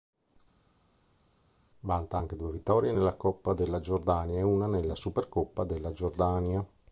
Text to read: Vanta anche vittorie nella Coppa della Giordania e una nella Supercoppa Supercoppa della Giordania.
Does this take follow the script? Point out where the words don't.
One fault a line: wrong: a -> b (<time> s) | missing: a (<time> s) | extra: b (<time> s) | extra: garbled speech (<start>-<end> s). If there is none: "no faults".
extra: due (2.4 s)
missing: Supercoppa (5.6 s)